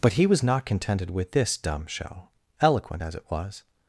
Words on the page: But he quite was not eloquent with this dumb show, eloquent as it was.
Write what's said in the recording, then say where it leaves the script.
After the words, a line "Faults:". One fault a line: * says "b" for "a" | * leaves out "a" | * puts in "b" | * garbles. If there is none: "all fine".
But he was not contented with this dumb show, eloquent as it was.
Faults:
* leaves out "quite"
* says "contented" for "eloquent"